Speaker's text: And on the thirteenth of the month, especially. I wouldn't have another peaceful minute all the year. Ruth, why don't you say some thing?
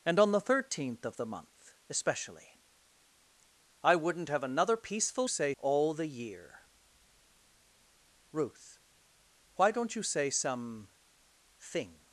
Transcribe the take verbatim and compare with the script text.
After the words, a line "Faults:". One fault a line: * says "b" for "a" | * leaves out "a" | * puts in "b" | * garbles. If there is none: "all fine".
And on the thirteenth of the month, especially. I wouldn't have another peaceful say all the year. Ruth, why don't you say some thing?
Faults:
* says "say" for "minute"